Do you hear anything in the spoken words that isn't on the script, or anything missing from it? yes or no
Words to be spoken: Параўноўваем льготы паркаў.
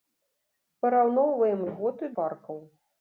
no